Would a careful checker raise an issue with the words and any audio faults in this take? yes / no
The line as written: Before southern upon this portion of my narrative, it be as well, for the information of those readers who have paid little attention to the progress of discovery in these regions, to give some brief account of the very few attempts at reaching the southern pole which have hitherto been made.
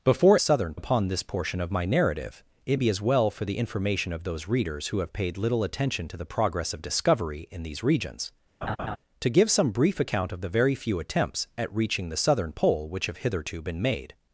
yes